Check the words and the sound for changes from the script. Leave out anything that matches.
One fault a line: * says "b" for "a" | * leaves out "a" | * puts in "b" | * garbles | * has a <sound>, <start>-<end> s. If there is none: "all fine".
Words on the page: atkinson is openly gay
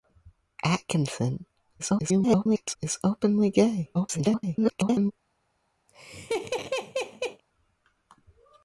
* garbles
* garbles
* has a laugh, 5.9-7.4 s